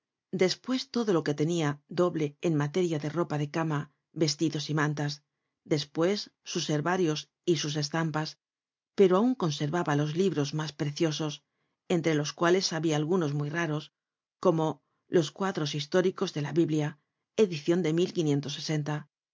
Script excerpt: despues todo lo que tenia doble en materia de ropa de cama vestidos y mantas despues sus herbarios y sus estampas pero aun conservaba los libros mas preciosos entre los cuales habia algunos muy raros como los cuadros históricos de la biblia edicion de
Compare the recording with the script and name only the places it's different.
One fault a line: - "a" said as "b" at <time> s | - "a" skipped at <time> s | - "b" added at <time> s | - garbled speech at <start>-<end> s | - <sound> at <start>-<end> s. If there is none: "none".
none